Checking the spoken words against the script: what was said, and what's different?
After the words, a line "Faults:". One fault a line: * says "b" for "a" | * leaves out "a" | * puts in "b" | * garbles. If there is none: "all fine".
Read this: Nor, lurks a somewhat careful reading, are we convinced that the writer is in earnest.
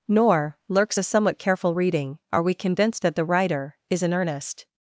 Nor, lurks a somewhat careful reading, are we convinced that the writer is in earnest.
Faults:
all fine